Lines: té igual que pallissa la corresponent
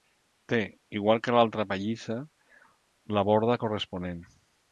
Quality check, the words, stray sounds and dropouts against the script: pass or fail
fail